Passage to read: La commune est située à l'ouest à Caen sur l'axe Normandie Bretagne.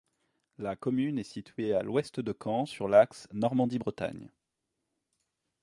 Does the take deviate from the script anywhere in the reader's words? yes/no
yes